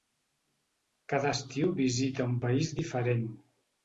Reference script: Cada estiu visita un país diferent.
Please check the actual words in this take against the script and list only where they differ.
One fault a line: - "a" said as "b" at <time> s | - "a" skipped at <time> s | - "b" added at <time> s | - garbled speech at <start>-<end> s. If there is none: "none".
none